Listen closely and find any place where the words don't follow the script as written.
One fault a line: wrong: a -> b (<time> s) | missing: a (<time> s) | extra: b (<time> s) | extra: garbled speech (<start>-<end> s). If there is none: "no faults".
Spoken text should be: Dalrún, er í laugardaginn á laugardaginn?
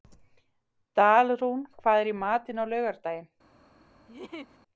extra: hvað (1.8 s)
wrong: laugardaginn -> matinn (2.2 s)